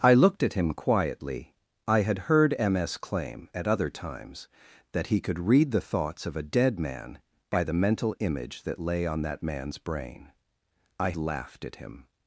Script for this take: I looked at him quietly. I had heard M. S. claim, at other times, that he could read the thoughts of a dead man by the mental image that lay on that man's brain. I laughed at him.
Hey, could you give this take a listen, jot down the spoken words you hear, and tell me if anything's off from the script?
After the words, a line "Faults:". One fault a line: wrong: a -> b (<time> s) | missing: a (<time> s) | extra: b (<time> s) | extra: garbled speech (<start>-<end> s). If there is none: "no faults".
I looked at him quietly. I had heard M. S. claim, at other times, that he could read the thoughts of a dead man by the mental image that lay on that man's brain. I laughed at him.
Faults:
no faults